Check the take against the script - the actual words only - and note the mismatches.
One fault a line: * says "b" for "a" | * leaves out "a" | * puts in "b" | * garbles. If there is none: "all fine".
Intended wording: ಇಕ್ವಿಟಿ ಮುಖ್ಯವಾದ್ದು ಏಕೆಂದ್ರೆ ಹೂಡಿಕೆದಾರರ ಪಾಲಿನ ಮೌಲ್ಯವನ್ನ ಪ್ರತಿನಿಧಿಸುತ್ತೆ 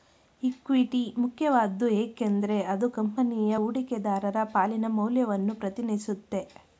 * puts in "ಅದು ಕಂಪನಿಯ"